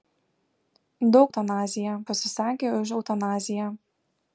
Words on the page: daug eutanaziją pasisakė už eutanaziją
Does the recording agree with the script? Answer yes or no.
yes